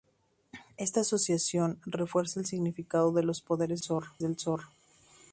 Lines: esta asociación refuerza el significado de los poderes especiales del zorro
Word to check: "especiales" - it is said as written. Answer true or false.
false